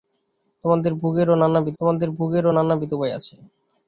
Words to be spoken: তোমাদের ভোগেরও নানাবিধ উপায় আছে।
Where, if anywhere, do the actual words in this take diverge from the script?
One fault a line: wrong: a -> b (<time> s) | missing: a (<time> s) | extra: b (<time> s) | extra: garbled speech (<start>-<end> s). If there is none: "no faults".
extra: তোমাদের ভোগেরও নানাবিধ (1.8 s)